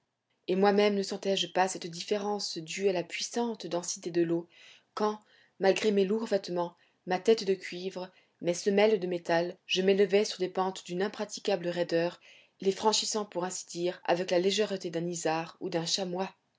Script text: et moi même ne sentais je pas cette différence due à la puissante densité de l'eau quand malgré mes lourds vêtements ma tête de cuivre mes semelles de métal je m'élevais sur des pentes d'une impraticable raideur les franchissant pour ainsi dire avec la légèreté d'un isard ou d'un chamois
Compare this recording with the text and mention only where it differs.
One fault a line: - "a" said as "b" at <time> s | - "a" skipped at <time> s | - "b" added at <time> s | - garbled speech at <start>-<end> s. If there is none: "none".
none